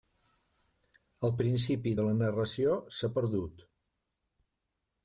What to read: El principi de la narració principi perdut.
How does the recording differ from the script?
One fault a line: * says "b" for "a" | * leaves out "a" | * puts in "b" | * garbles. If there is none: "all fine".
* says "s'ha" for "principi"